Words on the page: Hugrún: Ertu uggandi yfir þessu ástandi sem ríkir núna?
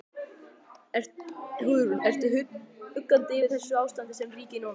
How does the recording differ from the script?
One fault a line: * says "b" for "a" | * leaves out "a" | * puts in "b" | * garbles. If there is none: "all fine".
all fine